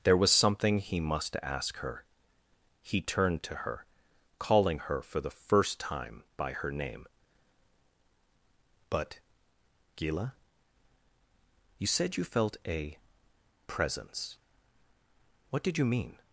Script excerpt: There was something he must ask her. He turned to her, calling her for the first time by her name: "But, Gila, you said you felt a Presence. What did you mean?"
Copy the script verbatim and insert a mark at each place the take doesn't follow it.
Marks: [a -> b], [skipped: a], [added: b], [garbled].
There was something he must ask her. He turned to her, calling her for the first time by her name: "But, Gila, you said you felt a Presence. What did you mean?"